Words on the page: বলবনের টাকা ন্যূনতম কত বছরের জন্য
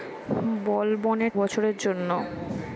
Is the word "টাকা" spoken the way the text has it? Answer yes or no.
no